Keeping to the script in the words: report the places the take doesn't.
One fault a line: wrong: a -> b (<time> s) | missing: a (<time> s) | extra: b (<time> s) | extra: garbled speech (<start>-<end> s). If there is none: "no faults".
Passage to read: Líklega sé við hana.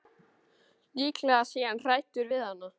extra: hann hræddur (1.7 s)